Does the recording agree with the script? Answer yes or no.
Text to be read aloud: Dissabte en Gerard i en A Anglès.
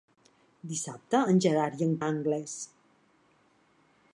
yes